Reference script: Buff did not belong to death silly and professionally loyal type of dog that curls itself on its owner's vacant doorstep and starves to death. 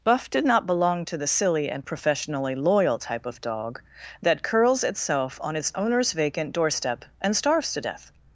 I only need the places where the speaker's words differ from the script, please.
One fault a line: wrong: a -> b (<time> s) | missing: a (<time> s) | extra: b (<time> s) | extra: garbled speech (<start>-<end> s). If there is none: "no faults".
wrong: death -> the (1.2 s)